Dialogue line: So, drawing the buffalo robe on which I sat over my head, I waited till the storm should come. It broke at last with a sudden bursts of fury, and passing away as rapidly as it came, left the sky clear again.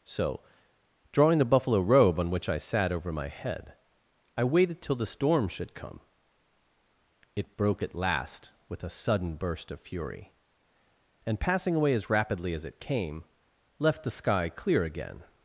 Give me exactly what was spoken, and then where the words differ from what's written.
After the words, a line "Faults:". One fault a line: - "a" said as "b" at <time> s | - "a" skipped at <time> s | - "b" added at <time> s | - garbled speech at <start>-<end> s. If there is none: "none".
So, drawing the buffalo robe on which I sat over my head, I waited till the storm should come. It broke at last with a sudden burst of fury, and passing away as rapidly as it came, left the sky clear again.
Faults:
- "bursts" said as "burst" at 9.4 s